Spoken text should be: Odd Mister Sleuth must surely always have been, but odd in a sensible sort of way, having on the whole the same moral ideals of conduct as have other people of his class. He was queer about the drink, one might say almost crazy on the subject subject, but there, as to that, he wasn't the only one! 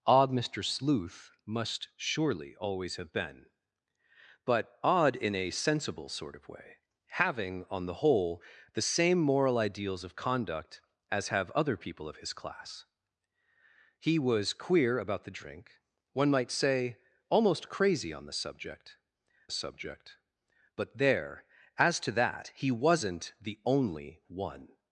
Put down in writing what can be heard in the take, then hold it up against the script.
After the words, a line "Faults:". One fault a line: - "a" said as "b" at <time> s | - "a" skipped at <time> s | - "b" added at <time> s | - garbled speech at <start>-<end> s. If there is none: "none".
Odd Mister Sleuth must surely always have been, but odd in a sensible sort of way, having on the whole the same moral ideals of conduct as have other people of his class. He was queer about the drink, one might say almost crazy on the subject subject, but there, as to that, he wasn't the only one!
Faults:
none